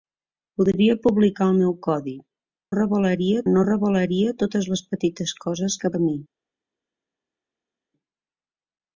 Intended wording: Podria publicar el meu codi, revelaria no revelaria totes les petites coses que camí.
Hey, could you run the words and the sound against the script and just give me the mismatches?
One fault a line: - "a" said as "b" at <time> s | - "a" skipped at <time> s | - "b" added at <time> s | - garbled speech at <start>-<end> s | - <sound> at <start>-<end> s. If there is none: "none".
none